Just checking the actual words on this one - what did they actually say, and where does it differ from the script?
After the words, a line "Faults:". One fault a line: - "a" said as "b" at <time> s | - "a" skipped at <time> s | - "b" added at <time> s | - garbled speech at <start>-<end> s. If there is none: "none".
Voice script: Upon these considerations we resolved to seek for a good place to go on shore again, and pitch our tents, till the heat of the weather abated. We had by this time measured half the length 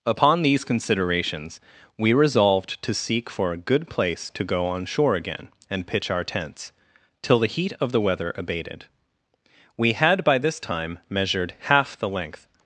Upon these considerations we resolved to seek for a good place to go on shore again, and pitch our tents, till the heat of the weather abated. We had by this time measured half the length
Faults:
none